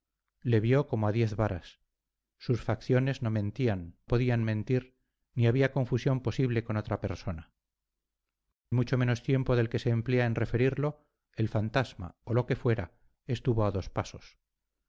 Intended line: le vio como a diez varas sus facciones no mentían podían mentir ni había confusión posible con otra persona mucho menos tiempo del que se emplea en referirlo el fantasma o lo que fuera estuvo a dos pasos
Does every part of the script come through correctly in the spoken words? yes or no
yes